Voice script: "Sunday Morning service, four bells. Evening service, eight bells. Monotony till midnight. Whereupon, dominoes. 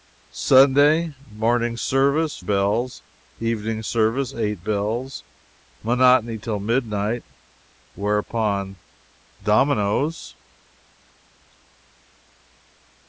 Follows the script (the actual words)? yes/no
no